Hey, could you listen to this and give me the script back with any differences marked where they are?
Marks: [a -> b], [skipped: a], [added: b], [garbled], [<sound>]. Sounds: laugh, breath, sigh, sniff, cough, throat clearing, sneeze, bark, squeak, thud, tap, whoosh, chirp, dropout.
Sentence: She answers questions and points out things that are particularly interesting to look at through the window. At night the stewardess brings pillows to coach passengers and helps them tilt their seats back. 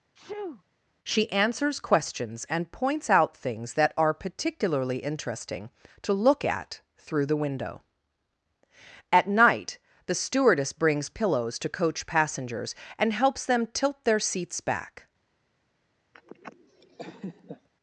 [sneeze] She answers questions and points out things that are particularly interesting to look at through the window. At night the stewardess brings pillows to coach passengers and helps them tilt their seats back. [laugh]